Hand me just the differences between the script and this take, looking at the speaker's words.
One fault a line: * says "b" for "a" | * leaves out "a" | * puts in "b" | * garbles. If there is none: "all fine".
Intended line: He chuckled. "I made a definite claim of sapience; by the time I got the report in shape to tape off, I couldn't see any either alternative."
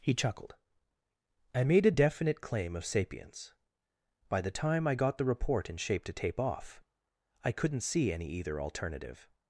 all fine